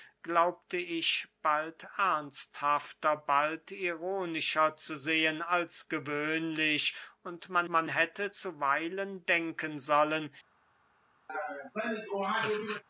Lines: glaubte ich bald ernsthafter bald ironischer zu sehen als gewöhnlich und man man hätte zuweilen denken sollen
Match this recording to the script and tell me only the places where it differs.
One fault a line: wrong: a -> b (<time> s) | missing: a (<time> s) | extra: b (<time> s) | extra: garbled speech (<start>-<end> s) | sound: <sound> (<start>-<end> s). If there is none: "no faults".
sound: laugh (11.3-12.8 s)